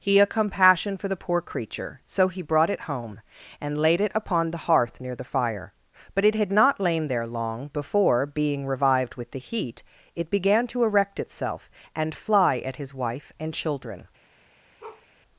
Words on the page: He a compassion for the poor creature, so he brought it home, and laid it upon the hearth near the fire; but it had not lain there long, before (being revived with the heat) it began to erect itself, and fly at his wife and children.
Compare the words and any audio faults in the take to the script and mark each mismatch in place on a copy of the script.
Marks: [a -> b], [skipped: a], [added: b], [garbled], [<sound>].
He a compassion for the poor creature, so he brought it home, and laid it upon the hearth near the fire; but it had not lain there long, before (being revived with the heat) it began to erect itself, and fly at his wife and children. [bark]